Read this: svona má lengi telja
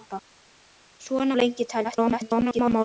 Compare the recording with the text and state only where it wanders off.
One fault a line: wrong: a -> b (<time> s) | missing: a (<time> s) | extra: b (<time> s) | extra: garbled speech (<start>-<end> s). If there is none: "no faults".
missing: má (1.4 s)
extra: garbled speech (1.8-2.8 s)